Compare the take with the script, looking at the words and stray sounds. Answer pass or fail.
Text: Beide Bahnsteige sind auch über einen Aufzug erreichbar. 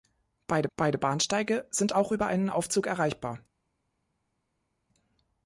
fail